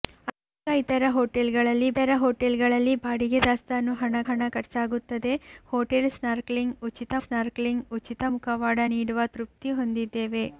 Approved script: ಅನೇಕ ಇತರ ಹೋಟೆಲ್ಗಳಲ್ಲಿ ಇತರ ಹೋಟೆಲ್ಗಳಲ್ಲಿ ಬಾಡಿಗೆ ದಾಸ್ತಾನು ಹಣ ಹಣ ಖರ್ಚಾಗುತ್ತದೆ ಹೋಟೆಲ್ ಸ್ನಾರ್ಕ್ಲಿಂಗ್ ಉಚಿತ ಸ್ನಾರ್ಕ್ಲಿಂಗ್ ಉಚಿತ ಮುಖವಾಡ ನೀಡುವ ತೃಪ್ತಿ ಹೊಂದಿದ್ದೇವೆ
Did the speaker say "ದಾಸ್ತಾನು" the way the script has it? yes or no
yes